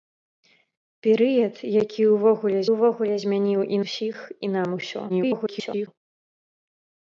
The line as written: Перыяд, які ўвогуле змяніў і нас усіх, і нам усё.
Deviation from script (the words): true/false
true